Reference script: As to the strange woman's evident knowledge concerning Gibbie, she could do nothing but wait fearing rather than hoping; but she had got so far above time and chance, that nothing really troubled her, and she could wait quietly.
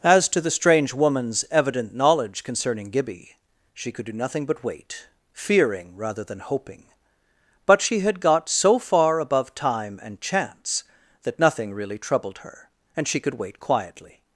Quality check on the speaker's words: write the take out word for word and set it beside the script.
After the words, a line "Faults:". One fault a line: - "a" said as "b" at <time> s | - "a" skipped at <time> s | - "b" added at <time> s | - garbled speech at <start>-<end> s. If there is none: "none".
As to the strange woman's evident knowledge concerning Gibbie, she could do nothing but wait fearing rather than hoping; but she had got so far above time and chance, that nothing really troubled her, and she could wait quietly.
Faults:
none